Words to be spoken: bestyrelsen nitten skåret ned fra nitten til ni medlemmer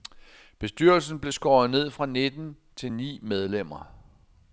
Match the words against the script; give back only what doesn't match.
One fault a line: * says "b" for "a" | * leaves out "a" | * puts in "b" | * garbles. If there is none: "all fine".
* says "blev" for "nitten"